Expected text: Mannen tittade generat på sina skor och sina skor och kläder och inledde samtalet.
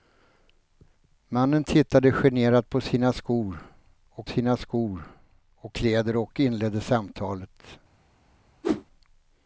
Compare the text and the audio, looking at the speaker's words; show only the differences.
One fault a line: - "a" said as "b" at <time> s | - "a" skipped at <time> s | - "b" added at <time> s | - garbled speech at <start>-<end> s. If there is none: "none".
none